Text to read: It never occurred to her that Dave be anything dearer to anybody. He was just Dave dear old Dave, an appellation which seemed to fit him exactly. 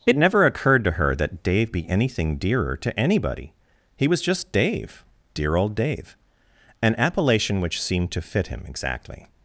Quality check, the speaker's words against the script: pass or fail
pass